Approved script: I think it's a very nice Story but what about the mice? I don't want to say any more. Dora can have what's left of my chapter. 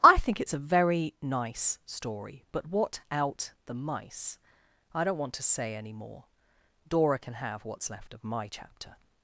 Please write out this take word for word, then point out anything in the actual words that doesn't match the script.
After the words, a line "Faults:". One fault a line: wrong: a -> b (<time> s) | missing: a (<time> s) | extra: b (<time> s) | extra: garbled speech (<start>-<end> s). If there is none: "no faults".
I think it's a very nice Story but what out the mice? I don't want to say any more. Dora can have what's left of my chapter.
Faults:
wrong: about -> out (3.1 s)